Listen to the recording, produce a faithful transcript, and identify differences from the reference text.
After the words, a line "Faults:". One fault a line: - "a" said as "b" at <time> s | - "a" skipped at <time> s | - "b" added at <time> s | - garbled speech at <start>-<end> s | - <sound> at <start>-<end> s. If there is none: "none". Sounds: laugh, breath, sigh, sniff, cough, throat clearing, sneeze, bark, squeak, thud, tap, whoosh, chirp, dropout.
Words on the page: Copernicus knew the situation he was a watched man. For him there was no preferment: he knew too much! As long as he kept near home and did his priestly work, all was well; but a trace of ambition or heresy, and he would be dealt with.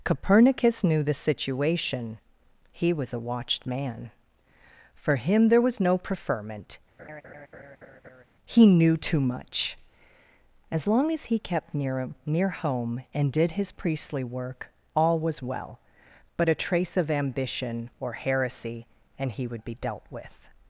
Copernicus knew the situation he was a watched man. For him there was no preferment: he knew too much! As long as he kept near near home and did his priestly work, all was well; but a trace of ambition or heresy, and he would be dealt with.
Faults:
- laugh at 7.0-8.2 s
- "near" added at 12.2 s